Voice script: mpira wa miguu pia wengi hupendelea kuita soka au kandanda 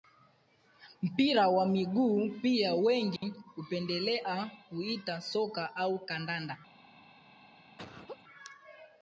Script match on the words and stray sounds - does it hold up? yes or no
no